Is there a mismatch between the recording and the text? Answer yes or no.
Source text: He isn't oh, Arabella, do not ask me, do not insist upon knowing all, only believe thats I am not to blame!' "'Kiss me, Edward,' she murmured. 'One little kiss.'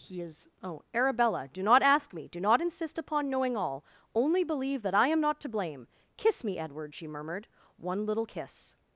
yes